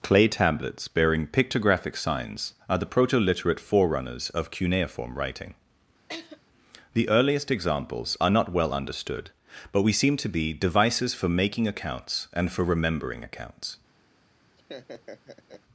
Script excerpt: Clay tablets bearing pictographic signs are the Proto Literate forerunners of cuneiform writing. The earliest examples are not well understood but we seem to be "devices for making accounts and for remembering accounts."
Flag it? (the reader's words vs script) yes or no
no